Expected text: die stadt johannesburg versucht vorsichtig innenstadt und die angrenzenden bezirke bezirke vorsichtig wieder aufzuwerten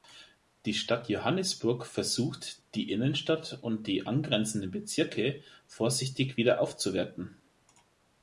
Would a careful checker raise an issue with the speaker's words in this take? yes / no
yes